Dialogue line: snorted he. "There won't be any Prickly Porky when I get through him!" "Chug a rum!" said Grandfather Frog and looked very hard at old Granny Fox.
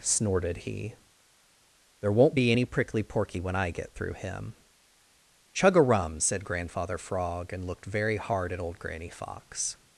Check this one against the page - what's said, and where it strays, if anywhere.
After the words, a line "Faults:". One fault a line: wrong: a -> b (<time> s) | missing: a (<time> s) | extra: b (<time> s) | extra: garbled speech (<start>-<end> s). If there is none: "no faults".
snorted he. "There won't be any Prickly Porky when I get through him!" "Chug a rum!" said Grandfather Frog and looked very hard at old Granny Fox.
Faults:
no faults